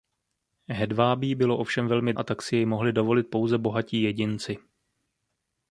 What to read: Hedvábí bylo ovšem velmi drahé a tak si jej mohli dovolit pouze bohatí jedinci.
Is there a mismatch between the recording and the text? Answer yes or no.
yes